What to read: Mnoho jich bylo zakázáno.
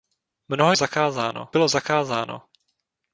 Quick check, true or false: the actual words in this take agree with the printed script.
false